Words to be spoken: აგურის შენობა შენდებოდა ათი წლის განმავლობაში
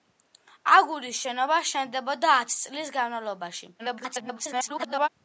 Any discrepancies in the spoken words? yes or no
yes